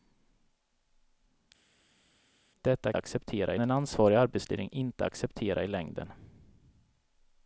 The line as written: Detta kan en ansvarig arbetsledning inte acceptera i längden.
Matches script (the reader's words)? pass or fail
fail